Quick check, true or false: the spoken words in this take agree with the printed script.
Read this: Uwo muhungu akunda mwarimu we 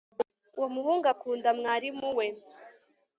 true